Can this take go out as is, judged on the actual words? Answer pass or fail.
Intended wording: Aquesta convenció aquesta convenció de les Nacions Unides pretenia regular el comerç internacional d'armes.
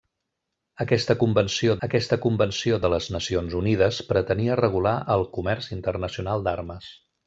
pass